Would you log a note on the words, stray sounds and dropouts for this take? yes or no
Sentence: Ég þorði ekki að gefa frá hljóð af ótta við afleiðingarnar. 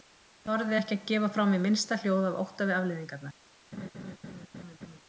yes